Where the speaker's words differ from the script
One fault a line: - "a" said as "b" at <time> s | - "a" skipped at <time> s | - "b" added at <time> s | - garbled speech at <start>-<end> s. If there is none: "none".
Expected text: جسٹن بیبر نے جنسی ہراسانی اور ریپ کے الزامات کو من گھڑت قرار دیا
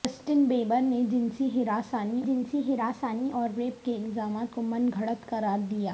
- "جنسی ہراسانی" added at 2.3 s